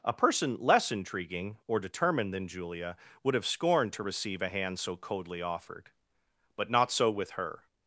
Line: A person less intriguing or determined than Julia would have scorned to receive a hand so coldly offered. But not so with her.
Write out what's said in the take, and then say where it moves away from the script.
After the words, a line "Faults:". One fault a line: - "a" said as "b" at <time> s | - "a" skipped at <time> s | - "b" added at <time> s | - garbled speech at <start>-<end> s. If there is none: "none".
A person less intriguing or determined than Julia would have scorned to receive a hand so coldly offered. But not so with her.
Faults:
none